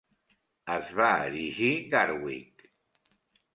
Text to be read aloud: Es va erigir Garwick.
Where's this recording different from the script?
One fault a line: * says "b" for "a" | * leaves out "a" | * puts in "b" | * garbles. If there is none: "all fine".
all fine